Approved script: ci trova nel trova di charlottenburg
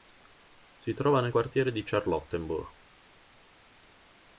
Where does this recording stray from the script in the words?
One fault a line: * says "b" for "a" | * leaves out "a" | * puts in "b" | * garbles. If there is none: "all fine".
* says "si" for "ci"
* says "quartiere" for "trova"